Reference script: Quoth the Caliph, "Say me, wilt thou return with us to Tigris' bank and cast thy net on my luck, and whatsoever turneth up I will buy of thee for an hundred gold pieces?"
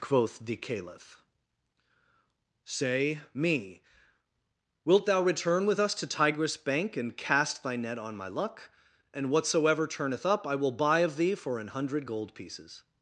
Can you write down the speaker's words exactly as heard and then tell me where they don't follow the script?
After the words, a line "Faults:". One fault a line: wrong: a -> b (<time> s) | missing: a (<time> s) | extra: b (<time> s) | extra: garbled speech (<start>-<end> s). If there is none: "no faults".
Quoth the Caliph, "Say me, wilt thou return with us to Tigris' bank and cast thy net on my luck, and whatsoever turneth up I will buy of thee for an hundred gold pieces?"
Faults:
no faults